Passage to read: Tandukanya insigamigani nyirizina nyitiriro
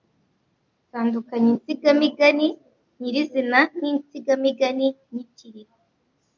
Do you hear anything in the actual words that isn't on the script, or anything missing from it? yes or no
yes